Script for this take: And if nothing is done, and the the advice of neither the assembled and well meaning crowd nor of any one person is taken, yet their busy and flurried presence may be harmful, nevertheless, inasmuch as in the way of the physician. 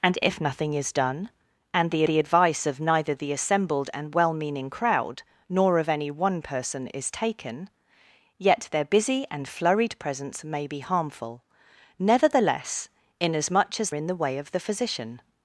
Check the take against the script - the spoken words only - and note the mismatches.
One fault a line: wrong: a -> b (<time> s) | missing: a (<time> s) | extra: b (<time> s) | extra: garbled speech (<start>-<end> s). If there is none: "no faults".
no faults